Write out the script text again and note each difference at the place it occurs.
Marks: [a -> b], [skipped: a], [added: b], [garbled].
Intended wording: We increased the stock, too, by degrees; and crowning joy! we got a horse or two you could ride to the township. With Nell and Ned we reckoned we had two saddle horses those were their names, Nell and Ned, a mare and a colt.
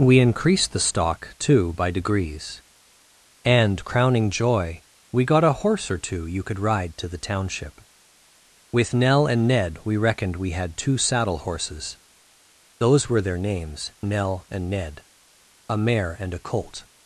We increased the stock, too, by degrees; and crowning joy! we got a horse or two you could ride to the township. With Nell and Ned we reckoned we had two saddle horses those were their names, Nell and Ned, a mare and a colt.